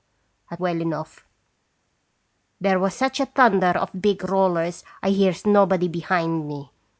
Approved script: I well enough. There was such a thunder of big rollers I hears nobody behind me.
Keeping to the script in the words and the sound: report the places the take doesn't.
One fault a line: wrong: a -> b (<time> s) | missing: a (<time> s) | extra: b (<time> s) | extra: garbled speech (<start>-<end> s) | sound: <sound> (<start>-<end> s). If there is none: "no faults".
no faults